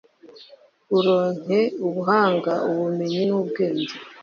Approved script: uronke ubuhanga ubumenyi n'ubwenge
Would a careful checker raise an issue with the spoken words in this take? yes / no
no